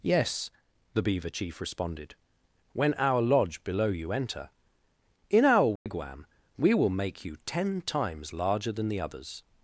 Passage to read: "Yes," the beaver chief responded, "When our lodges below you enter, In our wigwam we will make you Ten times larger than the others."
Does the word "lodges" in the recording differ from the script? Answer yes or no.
yes